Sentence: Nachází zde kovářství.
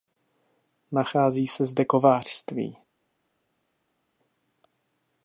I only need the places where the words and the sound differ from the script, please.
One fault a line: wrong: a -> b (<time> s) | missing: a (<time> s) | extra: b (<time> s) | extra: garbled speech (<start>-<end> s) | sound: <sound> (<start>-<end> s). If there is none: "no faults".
extra: se (1.5 s)